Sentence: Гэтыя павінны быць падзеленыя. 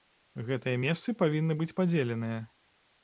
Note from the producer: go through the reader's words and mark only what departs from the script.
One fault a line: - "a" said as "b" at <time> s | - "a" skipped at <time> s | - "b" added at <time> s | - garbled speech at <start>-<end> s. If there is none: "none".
- "месцы" added at 0.8 s